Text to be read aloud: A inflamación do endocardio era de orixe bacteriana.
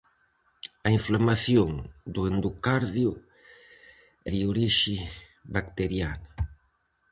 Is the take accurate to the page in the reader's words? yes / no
no